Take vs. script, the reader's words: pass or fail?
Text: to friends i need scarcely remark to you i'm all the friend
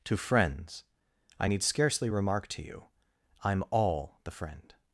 pass